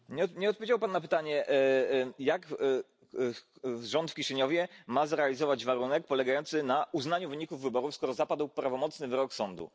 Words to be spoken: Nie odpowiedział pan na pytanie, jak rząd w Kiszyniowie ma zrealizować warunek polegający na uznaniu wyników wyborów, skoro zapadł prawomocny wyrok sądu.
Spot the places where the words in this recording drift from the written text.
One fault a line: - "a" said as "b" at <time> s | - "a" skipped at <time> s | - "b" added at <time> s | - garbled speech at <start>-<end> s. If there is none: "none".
none